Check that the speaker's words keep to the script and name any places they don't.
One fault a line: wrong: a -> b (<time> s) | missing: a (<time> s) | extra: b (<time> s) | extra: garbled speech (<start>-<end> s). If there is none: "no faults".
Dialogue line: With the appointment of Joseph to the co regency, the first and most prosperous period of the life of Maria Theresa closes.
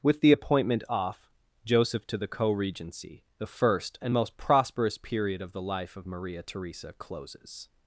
wrong: of -> off (0.9 s)